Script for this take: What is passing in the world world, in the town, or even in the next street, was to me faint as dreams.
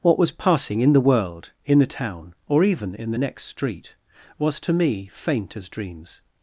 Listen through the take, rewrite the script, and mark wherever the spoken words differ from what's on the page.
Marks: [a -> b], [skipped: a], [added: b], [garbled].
What [is -> was] passing in the world [skipped: world,] in the town, or even in the next street, was to me faint as dreams.